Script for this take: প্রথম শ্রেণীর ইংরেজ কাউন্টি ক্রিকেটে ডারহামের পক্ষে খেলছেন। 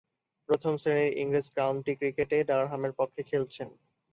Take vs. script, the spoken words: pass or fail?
pass